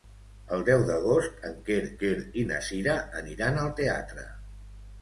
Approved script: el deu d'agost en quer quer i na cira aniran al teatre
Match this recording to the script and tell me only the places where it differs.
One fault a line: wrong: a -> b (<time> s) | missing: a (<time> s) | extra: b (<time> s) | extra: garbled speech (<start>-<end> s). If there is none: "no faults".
no faults